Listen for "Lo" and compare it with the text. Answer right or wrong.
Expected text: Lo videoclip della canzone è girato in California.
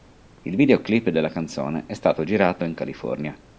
wrong